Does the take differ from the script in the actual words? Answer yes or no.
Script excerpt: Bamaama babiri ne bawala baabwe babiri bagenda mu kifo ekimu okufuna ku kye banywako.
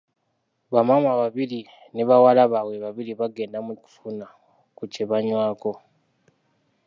yes